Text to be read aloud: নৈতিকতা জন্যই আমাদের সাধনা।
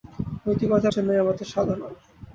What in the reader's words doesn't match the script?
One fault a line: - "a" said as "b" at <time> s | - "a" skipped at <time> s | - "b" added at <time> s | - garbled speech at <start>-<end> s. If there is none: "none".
none